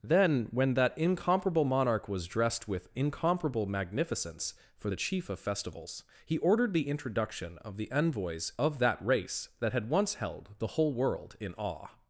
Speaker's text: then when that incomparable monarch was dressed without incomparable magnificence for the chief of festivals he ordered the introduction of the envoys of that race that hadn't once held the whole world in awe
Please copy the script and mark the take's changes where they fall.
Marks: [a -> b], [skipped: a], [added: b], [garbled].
then when that incomparable monarch was dressed [without -> with] incomparable magnificence for the chief of festivals he ordered the introduction of the envoys of that race that [hadn't -> had] once held the whole world in awe